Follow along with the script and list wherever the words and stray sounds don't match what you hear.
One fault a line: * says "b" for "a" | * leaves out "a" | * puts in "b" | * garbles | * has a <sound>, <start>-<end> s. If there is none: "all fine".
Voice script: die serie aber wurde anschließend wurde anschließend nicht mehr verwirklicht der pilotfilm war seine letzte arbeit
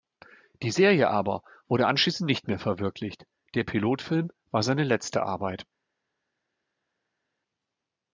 * leaves out "wurde anschließend"